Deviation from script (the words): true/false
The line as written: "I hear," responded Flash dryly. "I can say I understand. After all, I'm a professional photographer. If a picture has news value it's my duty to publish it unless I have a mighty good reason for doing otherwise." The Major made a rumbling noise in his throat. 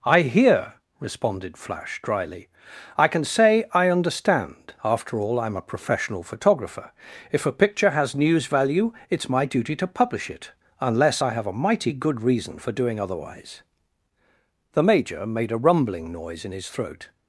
false